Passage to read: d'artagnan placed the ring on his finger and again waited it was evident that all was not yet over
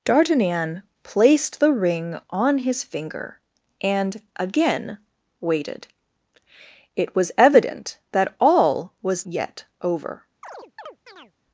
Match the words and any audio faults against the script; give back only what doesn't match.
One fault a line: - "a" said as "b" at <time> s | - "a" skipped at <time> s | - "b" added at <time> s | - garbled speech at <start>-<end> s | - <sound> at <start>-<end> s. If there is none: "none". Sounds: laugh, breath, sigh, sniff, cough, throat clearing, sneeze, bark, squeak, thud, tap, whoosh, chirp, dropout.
- "not" skipped at 9.3 s
- chirp at 10.4-11.3 s